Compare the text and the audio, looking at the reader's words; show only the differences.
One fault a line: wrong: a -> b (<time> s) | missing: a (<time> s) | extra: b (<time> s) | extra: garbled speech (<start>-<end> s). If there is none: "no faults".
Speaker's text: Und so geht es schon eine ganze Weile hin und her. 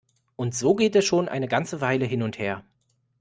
no faults